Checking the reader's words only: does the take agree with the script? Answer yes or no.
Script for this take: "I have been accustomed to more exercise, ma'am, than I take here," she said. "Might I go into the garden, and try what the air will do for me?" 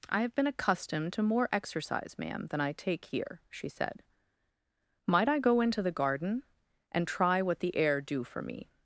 no